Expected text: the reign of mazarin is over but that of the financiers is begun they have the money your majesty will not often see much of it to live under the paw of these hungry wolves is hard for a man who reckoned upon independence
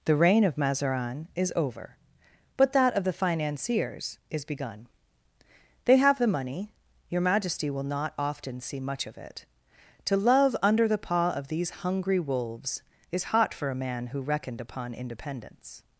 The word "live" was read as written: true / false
false